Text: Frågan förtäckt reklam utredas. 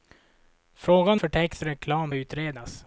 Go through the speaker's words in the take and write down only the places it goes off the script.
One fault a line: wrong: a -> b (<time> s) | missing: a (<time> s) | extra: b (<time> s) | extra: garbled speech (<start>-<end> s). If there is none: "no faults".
no faults